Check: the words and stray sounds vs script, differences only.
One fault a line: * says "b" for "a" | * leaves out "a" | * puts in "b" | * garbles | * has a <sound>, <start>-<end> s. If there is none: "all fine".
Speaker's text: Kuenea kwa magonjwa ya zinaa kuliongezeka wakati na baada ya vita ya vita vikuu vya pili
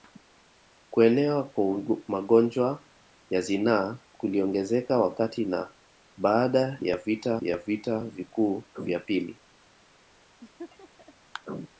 * has a laugh, 10.4-11.1 s